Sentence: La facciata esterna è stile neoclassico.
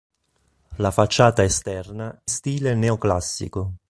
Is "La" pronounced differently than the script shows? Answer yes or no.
no